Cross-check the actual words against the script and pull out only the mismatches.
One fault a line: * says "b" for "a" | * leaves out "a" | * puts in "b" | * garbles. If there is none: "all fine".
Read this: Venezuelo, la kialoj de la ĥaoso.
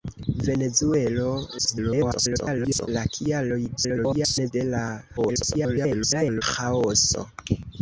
* garbles
* garbles
* garbles